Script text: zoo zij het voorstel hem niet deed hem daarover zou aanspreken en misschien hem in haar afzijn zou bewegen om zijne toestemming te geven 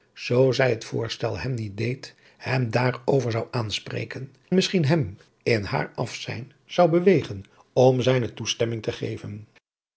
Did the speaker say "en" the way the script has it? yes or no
no